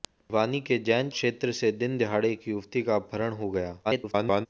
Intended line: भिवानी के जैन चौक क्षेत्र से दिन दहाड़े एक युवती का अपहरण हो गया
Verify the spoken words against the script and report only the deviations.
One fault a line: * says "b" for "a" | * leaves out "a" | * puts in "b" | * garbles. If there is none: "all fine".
* leaves out "चौक"
* garbles